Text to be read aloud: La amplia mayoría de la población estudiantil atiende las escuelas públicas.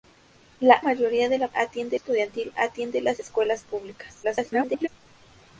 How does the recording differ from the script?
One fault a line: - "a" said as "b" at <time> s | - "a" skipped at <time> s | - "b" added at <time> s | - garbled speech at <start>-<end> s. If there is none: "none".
- "amplia" skipped at 0.8 s
- "población" said as "atiende" at 1.5 s
- garbled speech at 4.2-4.9 s